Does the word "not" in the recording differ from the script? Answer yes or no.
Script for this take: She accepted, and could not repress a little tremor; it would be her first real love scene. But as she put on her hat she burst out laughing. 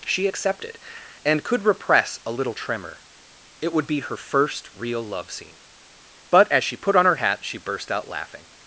yes